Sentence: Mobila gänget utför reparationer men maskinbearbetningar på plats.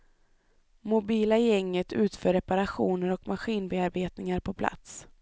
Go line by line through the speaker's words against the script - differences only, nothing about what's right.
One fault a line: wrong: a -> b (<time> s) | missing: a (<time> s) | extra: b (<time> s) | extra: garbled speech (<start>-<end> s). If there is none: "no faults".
wrong: men -> och (3.1 s)